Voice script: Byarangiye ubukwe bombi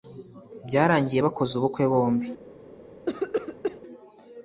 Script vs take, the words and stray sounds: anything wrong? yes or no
yes